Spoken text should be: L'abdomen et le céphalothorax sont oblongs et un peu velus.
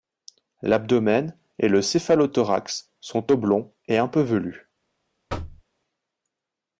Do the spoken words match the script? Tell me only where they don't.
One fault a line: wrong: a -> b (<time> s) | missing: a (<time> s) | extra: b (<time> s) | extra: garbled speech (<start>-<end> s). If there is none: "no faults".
no faults